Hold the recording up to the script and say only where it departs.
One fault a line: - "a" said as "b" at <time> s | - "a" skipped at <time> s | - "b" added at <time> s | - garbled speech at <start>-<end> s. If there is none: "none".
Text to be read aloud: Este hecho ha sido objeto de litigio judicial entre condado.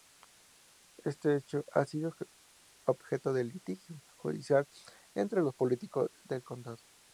- "los políticos del" added at 5.4 s